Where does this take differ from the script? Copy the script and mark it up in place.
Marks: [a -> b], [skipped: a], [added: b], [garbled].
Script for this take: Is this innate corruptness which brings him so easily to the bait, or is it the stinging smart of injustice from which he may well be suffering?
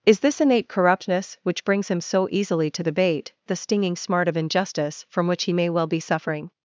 Is this innate corruptness which brings him so easily to the bait, [skipped: or is it] the stinging smart of injustice from which he may well be suffering?